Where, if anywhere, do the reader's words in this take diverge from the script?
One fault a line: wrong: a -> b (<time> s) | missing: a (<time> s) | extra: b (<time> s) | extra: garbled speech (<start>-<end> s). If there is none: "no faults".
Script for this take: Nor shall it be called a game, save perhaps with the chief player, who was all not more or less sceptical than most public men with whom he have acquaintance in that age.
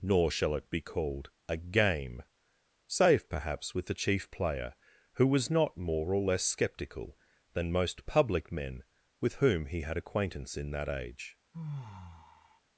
missing: all (5.5 s)
wrong: have -> had (9.8 s)